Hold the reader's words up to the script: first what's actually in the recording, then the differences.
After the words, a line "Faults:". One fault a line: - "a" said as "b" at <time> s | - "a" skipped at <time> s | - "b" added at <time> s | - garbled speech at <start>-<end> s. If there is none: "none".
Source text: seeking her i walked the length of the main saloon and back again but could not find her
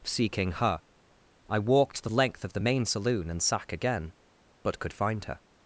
seeking her i walked the length of the main saloon and sack again but could find her
Faults:
- "back" said as "sack" at 3.4 s
- "not" skipped at 4.9 s